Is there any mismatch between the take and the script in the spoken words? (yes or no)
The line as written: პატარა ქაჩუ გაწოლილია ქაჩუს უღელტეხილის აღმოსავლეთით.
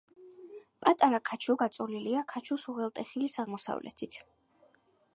no